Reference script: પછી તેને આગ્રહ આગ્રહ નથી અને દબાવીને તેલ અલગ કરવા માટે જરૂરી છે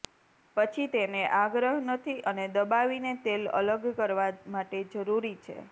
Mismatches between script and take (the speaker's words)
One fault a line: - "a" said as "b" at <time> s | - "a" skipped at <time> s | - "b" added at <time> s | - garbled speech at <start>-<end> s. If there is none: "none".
- "આગ્રહ" skipped at 1.7 s